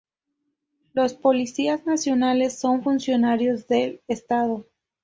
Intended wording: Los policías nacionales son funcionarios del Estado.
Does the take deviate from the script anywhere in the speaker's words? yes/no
no